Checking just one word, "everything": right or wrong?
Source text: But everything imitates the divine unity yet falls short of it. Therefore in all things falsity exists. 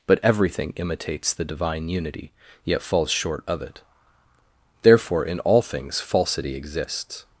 right